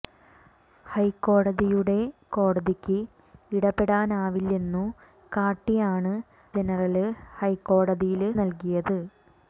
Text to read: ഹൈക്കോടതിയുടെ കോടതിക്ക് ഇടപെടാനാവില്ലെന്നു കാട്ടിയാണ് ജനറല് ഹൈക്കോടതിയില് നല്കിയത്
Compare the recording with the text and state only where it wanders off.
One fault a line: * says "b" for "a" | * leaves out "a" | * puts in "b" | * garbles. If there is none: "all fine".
all fine